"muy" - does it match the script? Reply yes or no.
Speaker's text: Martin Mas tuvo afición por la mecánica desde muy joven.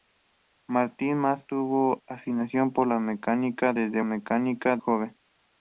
no